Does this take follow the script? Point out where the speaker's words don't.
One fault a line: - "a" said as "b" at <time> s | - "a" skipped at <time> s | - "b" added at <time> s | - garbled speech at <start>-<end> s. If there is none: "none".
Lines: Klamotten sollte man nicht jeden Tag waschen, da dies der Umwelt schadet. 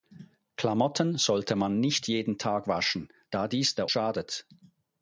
- "Umwelt" skipped at 3.9 s